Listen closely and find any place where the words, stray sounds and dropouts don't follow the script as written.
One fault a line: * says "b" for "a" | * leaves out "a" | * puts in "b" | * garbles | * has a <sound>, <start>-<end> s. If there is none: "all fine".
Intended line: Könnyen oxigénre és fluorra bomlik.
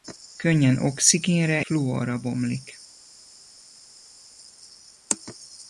* leaves out "és"